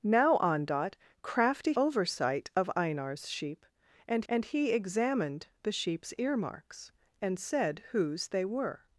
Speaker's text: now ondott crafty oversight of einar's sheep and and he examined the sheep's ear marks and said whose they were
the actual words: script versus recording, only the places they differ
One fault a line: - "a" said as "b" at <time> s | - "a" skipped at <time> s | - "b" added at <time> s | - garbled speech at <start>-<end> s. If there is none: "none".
none